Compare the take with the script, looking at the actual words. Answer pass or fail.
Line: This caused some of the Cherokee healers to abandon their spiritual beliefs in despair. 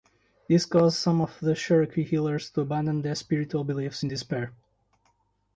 pass